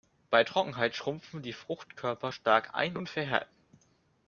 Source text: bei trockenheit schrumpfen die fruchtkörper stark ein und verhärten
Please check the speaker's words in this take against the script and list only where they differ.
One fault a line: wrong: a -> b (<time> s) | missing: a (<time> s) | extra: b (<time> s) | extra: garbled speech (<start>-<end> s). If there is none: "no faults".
no faults